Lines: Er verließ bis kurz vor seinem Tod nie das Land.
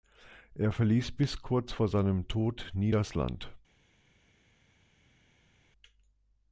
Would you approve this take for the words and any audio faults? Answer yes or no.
yes